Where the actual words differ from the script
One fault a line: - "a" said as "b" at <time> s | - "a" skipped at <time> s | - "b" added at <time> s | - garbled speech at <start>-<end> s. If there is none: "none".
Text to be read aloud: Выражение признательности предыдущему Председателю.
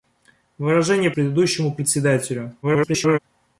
- "признательности" skipped at 1.1 s
- garbled speech at 2.6-3.2 s